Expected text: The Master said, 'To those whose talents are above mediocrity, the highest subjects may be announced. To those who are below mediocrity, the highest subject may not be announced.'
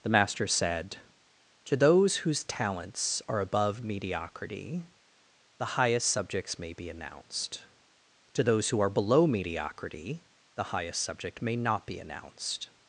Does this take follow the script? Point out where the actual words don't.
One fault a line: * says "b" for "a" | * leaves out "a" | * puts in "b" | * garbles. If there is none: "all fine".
all fine